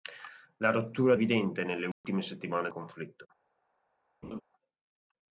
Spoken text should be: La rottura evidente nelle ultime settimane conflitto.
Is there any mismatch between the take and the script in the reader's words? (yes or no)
no